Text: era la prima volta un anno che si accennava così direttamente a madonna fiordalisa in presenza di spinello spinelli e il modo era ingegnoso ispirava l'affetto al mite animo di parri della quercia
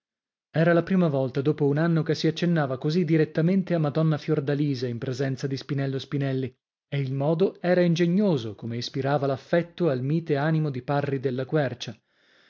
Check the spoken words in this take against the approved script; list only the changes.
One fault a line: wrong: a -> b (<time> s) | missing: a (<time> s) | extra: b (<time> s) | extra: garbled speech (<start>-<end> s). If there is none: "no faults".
extra: dopo (1.4 s)
extra: come (8.6 s)